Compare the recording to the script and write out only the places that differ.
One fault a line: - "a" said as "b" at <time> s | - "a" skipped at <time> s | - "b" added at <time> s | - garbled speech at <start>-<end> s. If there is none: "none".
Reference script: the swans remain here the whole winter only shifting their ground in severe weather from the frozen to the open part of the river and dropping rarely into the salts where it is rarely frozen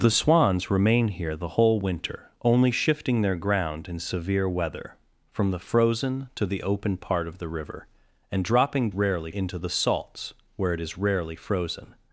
none